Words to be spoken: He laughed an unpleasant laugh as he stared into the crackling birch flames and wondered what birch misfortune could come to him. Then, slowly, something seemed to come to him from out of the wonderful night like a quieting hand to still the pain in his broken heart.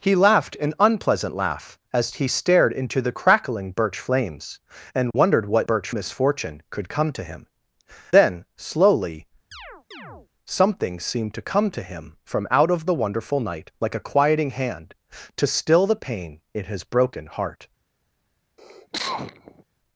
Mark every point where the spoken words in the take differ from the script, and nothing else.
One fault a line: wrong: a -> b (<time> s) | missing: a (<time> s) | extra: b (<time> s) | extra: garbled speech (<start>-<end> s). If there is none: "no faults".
no faults